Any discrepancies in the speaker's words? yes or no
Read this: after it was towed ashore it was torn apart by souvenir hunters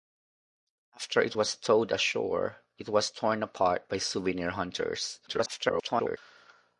yes